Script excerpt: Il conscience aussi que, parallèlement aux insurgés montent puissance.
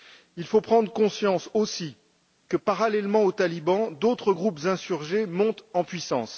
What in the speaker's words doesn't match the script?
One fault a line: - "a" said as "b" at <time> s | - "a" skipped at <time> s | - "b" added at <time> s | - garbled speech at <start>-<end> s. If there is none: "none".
- "faut prendre" added at 0.5 s
- "talibans d'autres groupes" added at 3.3 s
- "en" added at 5.7 s